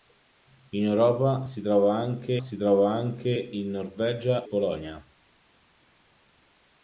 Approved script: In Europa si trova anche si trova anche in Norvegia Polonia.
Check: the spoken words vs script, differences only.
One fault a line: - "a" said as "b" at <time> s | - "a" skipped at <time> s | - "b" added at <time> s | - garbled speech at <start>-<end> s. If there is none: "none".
none